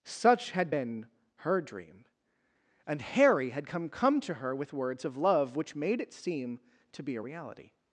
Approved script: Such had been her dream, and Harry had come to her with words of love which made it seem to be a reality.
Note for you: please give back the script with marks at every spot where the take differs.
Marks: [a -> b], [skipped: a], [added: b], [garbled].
Such had been her dream, and Harry had come [added: come] to her with words of love which made it seem to be a reality.